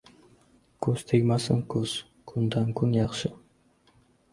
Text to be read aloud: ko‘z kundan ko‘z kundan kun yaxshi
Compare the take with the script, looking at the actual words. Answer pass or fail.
fail